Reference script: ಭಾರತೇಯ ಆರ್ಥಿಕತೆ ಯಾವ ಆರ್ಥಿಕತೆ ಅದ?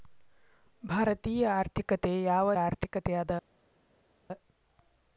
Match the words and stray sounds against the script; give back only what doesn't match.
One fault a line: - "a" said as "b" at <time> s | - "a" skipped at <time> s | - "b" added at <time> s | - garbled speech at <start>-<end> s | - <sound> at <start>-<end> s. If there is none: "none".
none